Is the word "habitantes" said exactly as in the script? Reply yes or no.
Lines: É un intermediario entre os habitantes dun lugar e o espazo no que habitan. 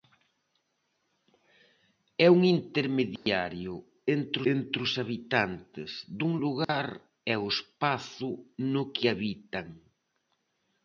yes